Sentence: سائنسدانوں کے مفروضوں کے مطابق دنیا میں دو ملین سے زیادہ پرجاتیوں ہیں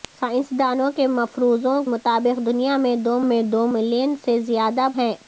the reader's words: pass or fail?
fail